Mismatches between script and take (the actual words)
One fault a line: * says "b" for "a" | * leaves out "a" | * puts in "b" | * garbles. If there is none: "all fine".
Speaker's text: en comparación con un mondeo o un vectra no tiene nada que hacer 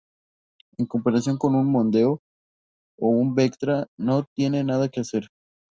all fine